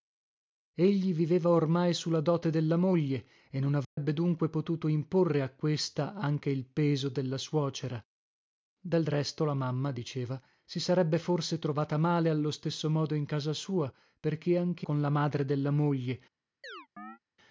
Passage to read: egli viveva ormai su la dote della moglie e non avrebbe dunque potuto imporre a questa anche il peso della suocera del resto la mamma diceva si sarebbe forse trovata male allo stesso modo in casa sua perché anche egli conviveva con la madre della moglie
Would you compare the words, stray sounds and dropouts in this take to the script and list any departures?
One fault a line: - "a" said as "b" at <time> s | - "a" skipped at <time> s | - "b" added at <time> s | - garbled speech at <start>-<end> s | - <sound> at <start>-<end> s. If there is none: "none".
- dropout at 3.8-4.0 s
- "egli conviveva" skipped at 14.9 s
- chirp at 16.6-17.2 s